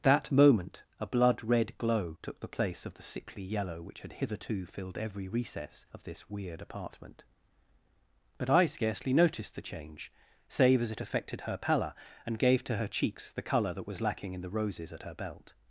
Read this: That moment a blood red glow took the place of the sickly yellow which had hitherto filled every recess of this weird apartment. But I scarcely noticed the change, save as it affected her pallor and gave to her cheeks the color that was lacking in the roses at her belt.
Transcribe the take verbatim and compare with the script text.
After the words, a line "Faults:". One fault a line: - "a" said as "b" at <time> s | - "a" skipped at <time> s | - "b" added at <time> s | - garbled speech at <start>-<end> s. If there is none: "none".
That moment a blood red glow took the place of the sickly yellow which had hitherto filled every recess of this weird apartment. But I scarcely noticed the change, save as it affected her pallor and gave to her cheeks the color that was lacking in the roses at her belt.
Faults:
none